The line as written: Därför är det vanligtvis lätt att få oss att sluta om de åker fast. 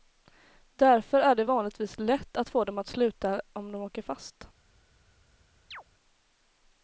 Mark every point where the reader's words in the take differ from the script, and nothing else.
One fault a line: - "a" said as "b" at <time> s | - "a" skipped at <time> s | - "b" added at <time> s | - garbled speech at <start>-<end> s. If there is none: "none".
- "oss" said as "dem" at 2.6 s